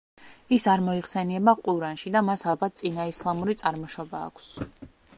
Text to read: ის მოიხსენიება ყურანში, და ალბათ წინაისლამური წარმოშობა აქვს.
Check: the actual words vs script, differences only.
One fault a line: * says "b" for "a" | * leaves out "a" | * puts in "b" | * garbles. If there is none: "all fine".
* puts in "არ"
* puts in "მას"